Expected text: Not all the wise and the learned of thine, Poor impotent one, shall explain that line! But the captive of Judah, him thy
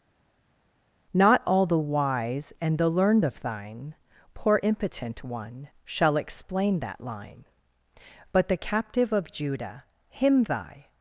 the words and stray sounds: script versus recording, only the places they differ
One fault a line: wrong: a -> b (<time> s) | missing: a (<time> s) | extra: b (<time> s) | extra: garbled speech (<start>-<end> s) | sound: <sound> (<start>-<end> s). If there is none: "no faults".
no faults